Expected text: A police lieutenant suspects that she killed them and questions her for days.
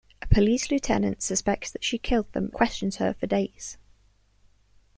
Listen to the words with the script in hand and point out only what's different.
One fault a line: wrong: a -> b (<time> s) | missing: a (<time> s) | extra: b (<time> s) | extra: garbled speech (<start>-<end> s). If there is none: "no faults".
missing: and (2.5 s)